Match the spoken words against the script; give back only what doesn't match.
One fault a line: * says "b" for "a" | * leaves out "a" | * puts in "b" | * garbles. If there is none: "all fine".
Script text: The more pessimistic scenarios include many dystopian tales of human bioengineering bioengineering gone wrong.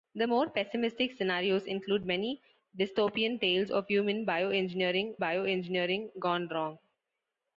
all fine